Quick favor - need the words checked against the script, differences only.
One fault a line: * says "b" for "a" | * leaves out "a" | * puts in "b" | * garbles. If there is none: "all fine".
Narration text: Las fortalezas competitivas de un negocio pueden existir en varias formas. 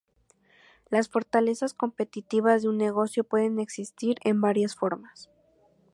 all fine